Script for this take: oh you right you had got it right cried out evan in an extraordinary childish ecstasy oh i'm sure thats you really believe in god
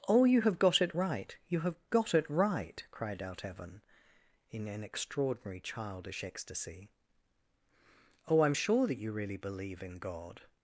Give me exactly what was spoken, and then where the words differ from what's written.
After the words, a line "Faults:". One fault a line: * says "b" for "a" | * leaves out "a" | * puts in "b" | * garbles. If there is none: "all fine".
oh you have got it right you have got it right cried out evan in an extraordinary childish ecstasy oh i'm sure that you really believe in god
Faults:
* puts in "have got it"
* says "have" for "had"
* says "that" for "thats"